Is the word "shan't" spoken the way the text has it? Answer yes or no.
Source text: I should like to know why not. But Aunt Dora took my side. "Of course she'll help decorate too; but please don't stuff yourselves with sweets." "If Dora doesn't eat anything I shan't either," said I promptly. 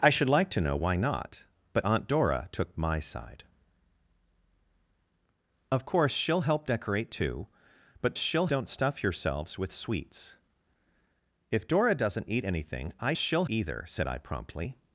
no